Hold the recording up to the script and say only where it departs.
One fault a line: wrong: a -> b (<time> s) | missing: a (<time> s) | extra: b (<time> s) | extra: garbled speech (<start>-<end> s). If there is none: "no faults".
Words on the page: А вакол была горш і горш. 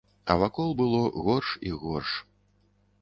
wrong: была -> было (0.8 s)